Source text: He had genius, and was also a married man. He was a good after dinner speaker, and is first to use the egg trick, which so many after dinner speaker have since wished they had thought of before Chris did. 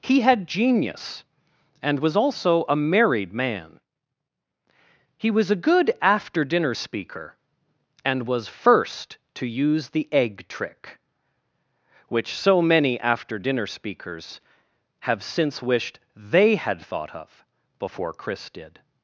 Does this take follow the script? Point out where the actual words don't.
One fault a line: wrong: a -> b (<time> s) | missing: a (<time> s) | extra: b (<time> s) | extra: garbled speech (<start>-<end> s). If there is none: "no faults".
wrong: is -> was (8.3 s)
wrong: speaker -> speakers (13.7 s)